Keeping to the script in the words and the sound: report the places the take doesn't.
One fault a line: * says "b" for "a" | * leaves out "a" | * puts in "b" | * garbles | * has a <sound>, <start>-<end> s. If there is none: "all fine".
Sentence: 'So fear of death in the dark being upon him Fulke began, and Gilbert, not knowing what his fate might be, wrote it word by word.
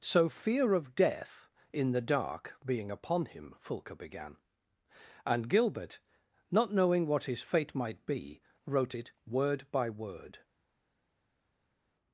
all fine